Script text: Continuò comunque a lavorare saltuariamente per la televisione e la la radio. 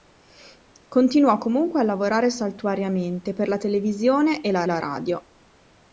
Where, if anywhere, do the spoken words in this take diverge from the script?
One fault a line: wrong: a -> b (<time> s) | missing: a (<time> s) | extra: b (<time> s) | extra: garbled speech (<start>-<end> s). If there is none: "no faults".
no faults